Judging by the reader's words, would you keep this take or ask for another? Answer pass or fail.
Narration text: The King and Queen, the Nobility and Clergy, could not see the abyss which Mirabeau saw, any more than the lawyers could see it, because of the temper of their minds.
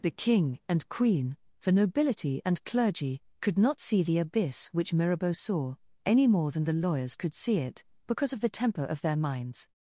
fail